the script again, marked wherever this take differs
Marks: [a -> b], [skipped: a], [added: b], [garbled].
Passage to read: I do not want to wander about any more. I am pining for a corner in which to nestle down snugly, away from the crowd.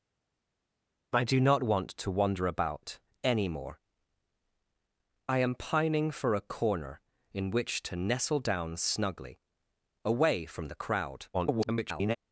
I do not want to wander about any more. I am pining for a corner in which to nestle down snugly, away from the crowd. [garbled]